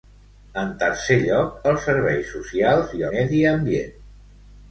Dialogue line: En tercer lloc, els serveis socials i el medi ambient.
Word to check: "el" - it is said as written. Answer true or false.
false